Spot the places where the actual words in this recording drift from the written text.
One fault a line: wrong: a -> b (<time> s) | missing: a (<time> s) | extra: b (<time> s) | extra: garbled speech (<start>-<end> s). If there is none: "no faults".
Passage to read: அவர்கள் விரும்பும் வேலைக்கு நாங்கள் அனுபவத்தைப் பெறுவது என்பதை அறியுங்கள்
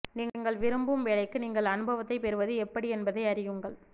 wrong: அவர்கள் -> நீங்கள் (0.1 s)
wrong: நாங்கள் -> நீங்கள் (1.4 s)
extra: எப்படி (2.6 s)